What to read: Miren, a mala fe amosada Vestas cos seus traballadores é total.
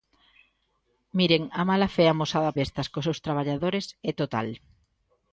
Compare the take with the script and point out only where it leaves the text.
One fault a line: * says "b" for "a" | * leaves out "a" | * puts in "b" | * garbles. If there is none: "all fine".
all fine